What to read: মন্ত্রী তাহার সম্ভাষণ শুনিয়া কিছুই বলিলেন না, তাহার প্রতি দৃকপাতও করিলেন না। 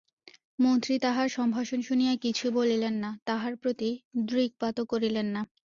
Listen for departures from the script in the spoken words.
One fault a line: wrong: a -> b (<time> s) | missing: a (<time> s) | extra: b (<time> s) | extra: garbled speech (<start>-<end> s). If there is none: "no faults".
no faults